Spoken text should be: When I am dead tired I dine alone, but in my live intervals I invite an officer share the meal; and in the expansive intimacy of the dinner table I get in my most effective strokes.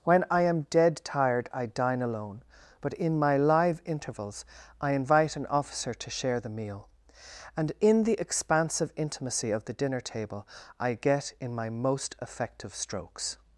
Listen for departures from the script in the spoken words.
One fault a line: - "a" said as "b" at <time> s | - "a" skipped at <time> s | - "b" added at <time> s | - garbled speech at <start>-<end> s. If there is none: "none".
- "to" added at 5.9 s